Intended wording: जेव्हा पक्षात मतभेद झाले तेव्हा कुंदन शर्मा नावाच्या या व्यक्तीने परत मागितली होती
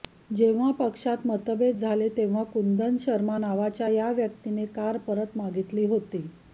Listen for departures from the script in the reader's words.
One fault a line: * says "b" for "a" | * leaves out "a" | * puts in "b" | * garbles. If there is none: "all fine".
* puts in "कार"